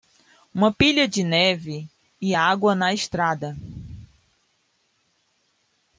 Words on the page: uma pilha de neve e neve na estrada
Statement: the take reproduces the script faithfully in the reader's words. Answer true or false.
false